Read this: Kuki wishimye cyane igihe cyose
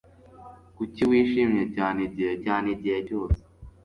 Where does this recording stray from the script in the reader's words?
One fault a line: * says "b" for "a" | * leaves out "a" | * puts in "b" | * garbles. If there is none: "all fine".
* puts in "cyane igihe"